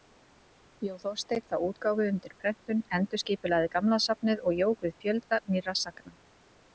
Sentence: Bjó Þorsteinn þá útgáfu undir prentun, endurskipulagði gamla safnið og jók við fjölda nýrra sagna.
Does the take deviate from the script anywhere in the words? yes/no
no